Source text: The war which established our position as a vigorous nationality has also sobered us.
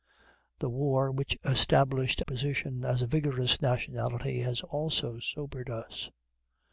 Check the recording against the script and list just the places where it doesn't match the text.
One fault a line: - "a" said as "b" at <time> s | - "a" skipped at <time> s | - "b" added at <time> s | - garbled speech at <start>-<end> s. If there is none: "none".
- "our" skipped at 2.2 s